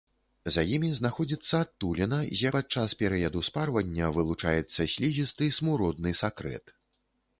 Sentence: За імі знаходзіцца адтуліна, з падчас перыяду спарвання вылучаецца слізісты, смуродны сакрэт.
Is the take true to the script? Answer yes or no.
yes